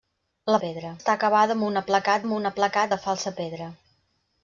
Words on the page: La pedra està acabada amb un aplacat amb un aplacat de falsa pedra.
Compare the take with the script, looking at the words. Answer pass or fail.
pass